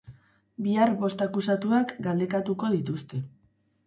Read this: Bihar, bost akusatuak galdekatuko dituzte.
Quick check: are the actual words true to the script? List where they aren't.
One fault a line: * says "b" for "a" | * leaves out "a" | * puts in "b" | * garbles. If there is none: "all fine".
all fine